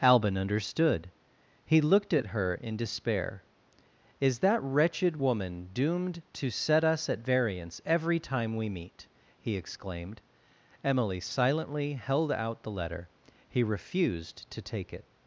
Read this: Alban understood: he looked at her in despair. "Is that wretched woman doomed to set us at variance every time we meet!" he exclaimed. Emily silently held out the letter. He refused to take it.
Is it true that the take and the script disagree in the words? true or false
false